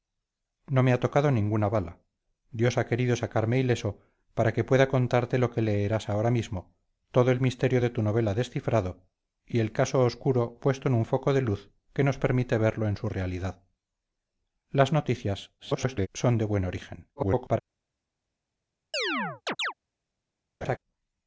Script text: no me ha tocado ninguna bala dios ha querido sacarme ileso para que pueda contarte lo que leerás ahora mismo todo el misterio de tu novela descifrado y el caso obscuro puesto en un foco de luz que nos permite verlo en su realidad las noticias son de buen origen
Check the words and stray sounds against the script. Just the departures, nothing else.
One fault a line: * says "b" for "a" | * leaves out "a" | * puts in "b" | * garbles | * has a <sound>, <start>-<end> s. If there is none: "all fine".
* garbles
* garbles
* has a chirp, 18.9-19.7 s
* has a laugh, 20.6-20.8 s